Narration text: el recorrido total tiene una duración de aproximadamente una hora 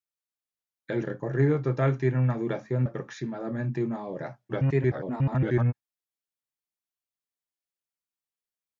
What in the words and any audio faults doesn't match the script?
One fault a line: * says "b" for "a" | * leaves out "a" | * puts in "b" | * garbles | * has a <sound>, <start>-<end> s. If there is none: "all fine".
* leaves out "de"
* garbles